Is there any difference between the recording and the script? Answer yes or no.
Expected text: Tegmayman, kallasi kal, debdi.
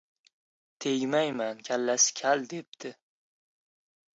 no